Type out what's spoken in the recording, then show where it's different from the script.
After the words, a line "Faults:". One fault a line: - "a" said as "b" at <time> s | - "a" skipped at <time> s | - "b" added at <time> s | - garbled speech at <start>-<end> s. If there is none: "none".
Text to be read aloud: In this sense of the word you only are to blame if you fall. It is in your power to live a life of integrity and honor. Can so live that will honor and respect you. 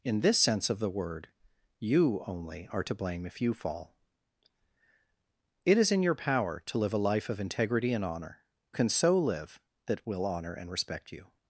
In this sense of the word you only are to blame if you fall. It is in your power to live a life of integrity and honor. Can so live that will honor and respect you.
Faults:
none